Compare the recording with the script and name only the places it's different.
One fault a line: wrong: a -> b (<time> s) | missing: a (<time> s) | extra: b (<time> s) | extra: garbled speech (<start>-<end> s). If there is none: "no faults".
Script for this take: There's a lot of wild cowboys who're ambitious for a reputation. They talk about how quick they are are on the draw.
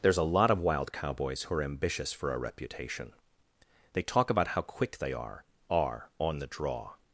no faults